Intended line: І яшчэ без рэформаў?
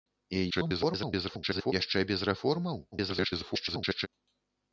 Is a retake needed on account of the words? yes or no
yes